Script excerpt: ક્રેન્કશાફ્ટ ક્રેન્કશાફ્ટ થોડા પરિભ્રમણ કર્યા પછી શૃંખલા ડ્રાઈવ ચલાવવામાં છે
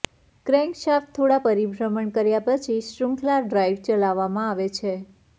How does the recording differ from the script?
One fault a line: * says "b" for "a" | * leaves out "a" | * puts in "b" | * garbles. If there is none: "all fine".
* leaves out "ક્રેન્કશાફ્ટ"
* puts in "આવે"